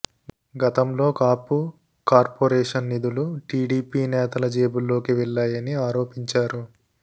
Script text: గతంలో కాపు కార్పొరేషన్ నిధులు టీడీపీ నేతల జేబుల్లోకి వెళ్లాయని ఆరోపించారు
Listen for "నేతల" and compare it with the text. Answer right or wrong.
right